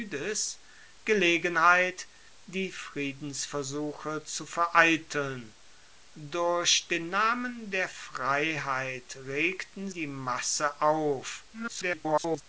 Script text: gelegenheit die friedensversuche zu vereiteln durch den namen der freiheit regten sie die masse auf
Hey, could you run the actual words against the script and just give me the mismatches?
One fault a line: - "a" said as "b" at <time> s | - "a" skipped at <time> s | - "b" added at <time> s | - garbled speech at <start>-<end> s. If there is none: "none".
- "sie" skipped at 9.9 s
- garbled speech at 11.5-12.4 s